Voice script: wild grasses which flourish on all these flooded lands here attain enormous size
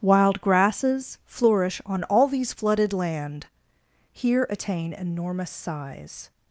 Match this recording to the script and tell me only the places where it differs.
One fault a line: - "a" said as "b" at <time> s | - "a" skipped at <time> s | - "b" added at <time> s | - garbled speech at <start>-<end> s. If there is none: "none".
- "which" skipped at 1.2 s
- "lands" said as "land" at 2.9 s